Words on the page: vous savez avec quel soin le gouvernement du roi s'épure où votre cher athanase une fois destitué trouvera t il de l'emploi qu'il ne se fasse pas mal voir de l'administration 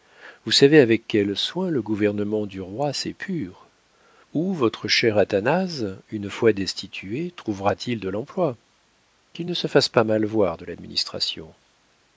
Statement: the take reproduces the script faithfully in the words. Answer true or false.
true